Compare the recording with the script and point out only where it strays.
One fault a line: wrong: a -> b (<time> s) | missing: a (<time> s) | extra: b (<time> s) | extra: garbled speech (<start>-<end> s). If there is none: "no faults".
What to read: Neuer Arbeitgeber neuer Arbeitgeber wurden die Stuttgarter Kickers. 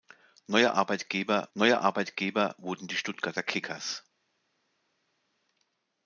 no faults